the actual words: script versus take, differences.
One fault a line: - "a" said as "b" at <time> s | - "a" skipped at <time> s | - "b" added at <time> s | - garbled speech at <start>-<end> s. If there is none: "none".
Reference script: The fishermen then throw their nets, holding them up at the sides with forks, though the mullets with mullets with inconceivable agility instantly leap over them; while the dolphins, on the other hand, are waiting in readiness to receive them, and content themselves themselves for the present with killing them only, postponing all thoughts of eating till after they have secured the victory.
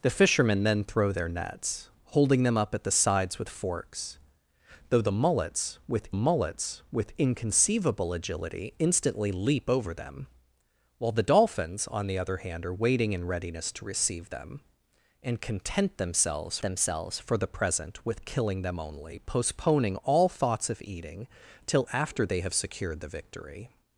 none